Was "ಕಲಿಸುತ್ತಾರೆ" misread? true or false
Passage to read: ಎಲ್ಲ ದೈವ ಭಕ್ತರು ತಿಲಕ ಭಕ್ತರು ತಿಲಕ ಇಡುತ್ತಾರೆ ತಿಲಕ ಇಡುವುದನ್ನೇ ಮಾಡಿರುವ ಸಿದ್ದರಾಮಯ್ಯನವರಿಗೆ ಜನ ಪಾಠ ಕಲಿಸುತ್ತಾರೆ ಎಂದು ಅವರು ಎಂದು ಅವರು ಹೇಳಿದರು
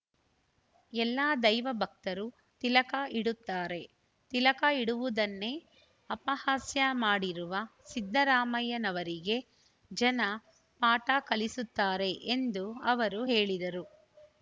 false